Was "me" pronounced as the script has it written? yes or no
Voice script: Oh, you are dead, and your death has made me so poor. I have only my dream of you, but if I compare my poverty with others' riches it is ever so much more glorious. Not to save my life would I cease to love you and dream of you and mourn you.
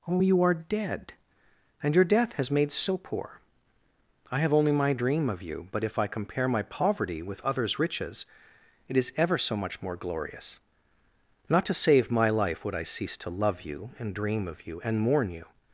no